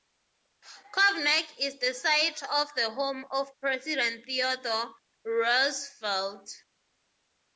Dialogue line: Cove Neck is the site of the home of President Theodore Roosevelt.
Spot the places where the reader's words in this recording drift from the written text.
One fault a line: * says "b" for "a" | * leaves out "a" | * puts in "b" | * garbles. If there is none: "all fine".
all fine